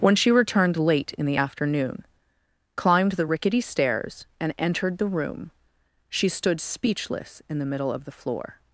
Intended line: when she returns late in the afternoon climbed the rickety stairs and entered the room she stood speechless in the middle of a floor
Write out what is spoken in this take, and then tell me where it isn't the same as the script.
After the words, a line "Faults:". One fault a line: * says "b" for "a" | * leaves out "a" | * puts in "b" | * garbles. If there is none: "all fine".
when she returned late in the afternoon climbed the rickety stairs and entered the room she stood speechless in the middle of the floor
Faults:
* says "returned" for "returns"
* says "the" for "a"